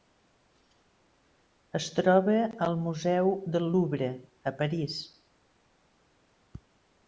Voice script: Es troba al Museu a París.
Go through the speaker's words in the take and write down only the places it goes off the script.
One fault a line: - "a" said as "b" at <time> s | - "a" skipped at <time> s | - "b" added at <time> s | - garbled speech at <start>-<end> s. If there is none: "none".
- "del Louvre" added at 3.6 s